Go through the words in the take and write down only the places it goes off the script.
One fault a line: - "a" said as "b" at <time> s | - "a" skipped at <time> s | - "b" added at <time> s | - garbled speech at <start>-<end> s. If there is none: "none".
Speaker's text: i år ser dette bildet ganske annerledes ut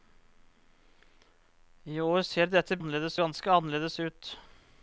- "bildet" said as "annerledes" at 2.8 s